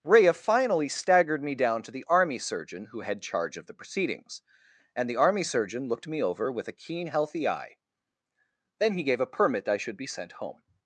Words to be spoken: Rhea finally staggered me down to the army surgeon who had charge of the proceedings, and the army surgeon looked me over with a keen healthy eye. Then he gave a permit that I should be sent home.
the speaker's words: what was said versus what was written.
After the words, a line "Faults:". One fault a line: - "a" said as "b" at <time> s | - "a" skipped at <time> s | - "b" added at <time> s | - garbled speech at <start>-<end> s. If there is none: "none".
Rhea finally staggered me down to the army surgeon who had charge of the proceedings, and the army surgeon looked me over with a keen healthy eye. Then he gave a permit I should be sent home.
Faults:
- "that" skipped at 9.7 s